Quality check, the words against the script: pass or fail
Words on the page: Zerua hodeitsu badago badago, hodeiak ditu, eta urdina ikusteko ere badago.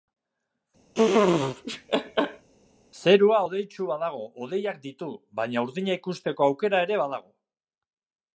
fail